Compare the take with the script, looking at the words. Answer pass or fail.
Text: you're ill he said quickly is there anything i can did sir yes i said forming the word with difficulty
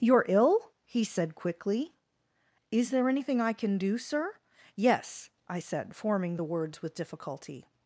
fail